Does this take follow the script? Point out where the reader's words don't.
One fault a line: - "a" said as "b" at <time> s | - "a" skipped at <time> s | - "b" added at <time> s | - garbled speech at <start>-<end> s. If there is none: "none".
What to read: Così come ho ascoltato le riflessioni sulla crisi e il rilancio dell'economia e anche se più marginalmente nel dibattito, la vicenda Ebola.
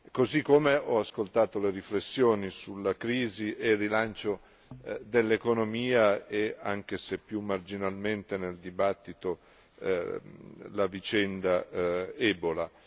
none